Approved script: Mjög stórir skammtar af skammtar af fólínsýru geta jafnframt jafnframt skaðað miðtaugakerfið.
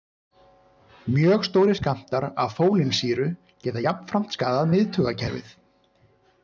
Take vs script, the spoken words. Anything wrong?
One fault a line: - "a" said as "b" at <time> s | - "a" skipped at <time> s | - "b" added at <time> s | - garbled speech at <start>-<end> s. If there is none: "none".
- "skammtar af" skipped at 2.6 s
- "jafnframt" skipped at 4.4 s